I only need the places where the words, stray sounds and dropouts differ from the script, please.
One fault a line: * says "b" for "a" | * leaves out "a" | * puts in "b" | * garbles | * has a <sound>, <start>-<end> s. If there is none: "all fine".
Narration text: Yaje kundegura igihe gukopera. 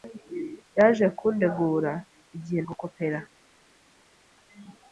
all fine